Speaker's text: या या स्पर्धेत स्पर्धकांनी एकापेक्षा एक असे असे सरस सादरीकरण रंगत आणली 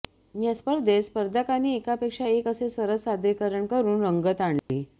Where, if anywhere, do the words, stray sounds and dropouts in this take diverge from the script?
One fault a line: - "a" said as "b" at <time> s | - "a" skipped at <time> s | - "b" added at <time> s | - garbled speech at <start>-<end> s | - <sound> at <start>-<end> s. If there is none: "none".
- "या" skipped at 0.5 s
- "असे" skipped at 2.7 s
- "करून" added at 3.7 s
- dropout at 4.6-4.7 s